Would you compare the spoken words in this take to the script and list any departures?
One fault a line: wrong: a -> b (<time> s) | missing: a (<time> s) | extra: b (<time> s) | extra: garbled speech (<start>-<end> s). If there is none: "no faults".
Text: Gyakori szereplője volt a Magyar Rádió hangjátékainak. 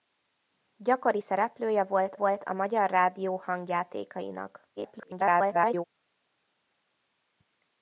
extra: volt (2.1 s)
extra: garbled speech (4.8-5.8 s)